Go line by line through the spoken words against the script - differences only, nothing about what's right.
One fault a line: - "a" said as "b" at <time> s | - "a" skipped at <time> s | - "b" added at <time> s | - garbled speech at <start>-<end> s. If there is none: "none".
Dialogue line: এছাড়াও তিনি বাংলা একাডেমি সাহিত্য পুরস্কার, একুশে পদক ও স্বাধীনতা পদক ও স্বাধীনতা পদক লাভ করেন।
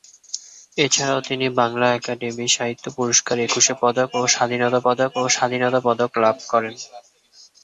none